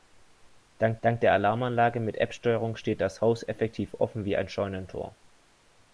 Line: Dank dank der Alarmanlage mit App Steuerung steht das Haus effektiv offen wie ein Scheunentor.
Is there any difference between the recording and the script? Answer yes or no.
no